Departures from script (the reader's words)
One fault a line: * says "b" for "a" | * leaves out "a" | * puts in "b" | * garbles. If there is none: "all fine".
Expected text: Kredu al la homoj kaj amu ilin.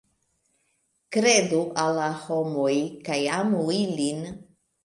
all fine